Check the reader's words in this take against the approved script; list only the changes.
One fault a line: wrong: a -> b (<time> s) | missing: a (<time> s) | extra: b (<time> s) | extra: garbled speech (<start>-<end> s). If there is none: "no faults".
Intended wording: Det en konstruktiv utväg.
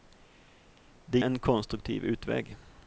no faults